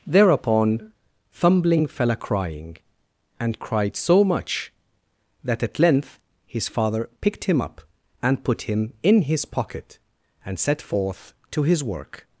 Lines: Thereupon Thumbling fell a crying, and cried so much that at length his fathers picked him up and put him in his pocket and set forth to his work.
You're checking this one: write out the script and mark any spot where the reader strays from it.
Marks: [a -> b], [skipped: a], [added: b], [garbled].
Thereupon Thumbling fell a crying, and cried so much that at length his [fathers -> father] picked him up and put him in his pocket and set forth to his work.